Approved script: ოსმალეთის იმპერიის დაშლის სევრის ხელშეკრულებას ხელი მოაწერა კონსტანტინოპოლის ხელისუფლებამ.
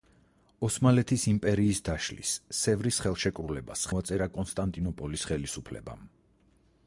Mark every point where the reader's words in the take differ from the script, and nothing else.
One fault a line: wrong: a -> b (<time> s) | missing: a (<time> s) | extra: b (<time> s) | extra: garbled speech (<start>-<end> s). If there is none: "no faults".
missing: ხელი (3.9 s)